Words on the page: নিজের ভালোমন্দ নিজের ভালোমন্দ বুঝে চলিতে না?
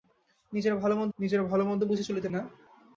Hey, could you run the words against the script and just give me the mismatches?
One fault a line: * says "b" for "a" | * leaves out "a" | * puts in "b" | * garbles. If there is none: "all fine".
all fine